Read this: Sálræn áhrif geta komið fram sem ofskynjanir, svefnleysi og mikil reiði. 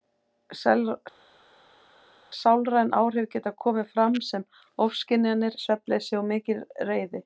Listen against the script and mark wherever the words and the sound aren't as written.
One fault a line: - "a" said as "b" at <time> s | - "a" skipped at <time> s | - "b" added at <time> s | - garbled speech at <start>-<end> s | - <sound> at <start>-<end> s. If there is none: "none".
none